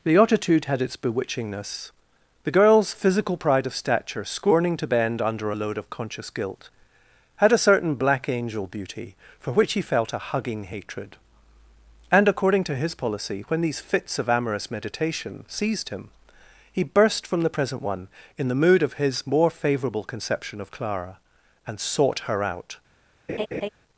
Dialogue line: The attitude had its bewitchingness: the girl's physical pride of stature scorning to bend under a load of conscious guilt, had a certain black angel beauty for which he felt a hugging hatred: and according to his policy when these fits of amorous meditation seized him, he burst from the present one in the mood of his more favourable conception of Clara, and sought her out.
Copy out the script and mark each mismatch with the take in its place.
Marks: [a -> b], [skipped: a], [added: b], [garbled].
The attitude had its bewitchingness: the girl's physical pride of stature scorning to bend under a load of conscious guilt, had a certain black angel beauty for which he felt a hugging hatred: and according to his policy when these fits of amorous meditation seized him, he burst from the present one in the mood of his more favourable conception of Clara, and sought her out.